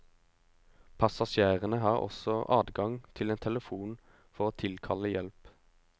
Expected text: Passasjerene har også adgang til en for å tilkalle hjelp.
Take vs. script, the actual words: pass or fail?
fail